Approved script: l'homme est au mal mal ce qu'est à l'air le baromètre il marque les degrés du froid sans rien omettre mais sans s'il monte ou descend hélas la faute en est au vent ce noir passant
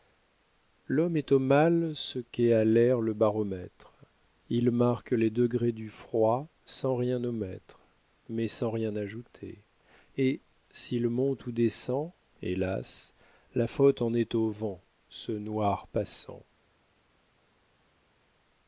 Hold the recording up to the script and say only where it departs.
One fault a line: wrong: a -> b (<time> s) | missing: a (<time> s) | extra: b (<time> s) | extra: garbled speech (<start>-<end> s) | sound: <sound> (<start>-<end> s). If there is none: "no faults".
missing: mal (1.9 s)
extra: rien ajouter et (8.7 s)